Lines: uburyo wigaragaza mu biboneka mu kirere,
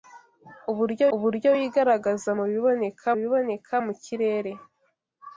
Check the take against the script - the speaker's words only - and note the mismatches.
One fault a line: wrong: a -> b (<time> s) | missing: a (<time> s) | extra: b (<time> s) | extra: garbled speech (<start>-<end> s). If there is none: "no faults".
extra: uburyo (1.1 s)
extra: biboneka (3.2 s)